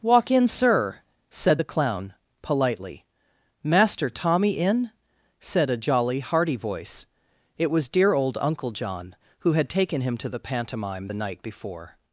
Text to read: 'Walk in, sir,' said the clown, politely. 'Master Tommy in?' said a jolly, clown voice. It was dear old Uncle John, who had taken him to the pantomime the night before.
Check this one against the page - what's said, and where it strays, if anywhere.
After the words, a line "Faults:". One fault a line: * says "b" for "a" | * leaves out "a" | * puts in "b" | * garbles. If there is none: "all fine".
'Walk in, sir,' said the clown, politely. 'Master Tommy in?' said a jolly, hearty voice. It was dear old Uncle John, who had taken him to the pantomime the night before.
Faults:
* says "hearty" for "clown"